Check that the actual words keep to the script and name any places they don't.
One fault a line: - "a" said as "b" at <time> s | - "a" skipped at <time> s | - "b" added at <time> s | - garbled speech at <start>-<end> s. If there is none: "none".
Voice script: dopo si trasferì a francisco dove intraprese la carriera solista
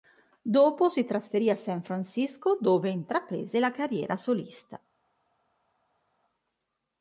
- "san" added at 1.6 s